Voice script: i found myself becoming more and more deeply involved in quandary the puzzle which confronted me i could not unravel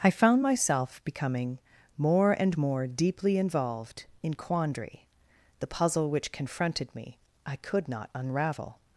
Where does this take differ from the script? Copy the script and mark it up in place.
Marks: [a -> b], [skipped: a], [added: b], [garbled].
i found myself becoming more and more deeply involved in quandary the puzzle which confronted me i could not unravel